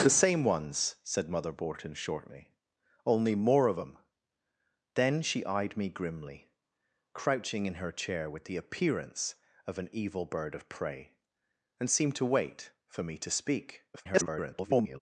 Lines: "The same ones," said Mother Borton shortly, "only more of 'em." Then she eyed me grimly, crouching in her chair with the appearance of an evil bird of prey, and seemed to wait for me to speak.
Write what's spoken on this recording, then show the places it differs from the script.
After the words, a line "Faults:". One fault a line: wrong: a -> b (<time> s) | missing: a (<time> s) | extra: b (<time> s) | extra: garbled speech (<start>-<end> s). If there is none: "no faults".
"The same ones," said Mother Borton shortly, "only more of 'em." Then she eyed me grimly, crouching in her chair with the appearance of an evil bird of prey, and seemed to wait for me to speak. [garbled]
Faults:
extra: garbled speech (13.9-15.0 s)